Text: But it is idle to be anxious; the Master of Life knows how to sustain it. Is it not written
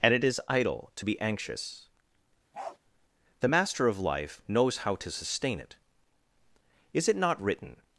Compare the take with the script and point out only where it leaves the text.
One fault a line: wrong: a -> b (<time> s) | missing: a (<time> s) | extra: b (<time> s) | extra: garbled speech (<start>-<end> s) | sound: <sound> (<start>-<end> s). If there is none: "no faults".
wrong: But -> And (0.0 s)
sound: bark (2.5-2.8 s)